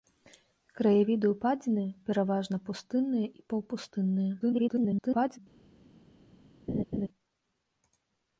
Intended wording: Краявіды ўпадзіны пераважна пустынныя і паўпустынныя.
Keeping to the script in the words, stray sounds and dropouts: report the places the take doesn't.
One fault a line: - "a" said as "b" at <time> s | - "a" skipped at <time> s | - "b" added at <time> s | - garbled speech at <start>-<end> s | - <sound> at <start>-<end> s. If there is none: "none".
- garbled speech at 4.4-5.4 s
- laugh at 6.7-7.1 s